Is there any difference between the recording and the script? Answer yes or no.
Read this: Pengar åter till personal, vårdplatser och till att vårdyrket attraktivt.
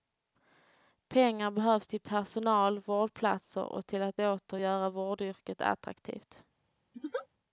yes